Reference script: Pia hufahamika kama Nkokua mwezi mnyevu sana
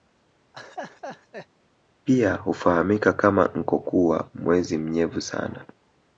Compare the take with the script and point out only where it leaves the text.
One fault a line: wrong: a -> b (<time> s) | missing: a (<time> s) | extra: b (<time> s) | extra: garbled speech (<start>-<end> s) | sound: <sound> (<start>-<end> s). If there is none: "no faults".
sound: laugh (0.5-1.5 s)